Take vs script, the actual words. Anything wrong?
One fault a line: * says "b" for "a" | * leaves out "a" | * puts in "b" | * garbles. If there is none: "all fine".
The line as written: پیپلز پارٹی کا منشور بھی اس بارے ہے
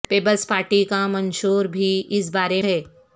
all fine